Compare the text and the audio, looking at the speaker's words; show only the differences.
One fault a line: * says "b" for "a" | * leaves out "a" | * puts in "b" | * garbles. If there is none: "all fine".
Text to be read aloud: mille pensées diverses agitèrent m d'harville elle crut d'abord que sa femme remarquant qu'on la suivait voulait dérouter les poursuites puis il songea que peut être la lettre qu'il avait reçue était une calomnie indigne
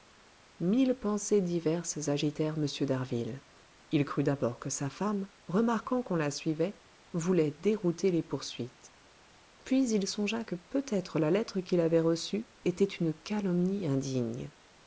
* says "il" for "elle"